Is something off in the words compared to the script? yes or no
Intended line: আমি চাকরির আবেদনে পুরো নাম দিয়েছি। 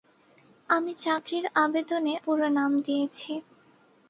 no